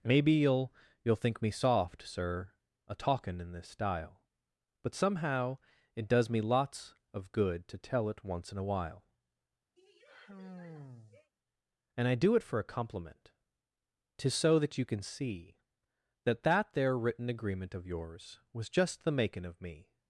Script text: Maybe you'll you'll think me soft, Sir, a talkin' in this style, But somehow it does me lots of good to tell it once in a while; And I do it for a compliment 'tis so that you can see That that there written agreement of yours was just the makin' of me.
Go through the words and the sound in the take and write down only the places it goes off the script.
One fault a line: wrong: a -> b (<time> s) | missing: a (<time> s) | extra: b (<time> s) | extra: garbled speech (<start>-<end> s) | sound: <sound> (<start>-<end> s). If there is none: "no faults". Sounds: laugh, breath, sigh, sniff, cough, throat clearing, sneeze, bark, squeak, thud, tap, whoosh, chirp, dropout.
sound: sigh (9.8-11.3 s)